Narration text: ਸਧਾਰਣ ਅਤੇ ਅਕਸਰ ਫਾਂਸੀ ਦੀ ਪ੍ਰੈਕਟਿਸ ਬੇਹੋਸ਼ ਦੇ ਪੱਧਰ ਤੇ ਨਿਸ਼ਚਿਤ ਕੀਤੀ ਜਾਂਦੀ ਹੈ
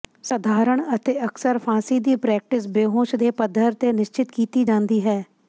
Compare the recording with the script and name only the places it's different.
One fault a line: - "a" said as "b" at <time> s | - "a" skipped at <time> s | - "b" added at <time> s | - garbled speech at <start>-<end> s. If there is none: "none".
none